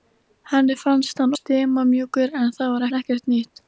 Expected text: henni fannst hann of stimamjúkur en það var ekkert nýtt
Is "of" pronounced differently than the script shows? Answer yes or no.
yes